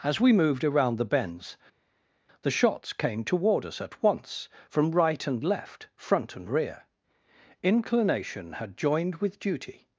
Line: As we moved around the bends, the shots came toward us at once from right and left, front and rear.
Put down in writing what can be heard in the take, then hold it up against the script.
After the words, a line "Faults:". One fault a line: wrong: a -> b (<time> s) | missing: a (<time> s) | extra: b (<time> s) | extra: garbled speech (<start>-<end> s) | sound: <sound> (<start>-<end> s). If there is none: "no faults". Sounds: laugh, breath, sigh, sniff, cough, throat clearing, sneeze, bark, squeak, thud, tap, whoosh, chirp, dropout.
As we moved around the bends, the shots came toward us at once from right and left, front and rear. Inclination had joined with duty
Faults:
extra: Inclination had joined with duty (7.6 s)